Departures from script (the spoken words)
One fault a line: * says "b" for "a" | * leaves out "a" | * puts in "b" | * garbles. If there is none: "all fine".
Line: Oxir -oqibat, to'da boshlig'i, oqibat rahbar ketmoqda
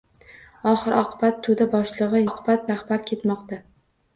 all fine